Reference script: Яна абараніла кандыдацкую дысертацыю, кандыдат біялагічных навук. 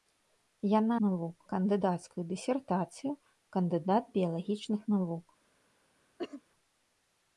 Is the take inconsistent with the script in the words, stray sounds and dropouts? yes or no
yes